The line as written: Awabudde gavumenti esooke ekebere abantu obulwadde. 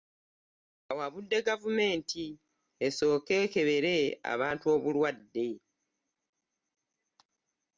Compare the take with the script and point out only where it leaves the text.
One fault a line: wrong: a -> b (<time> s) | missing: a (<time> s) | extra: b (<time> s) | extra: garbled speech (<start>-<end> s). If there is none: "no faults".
no faults